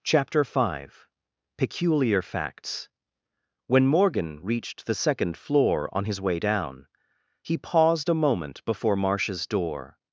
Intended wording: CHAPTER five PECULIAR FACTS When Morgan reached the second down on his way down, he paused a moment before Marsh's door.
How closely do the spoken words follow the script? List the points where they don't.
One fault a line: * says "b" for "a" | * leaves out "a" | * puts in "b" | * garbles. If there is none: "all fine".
* says "floor" for "down"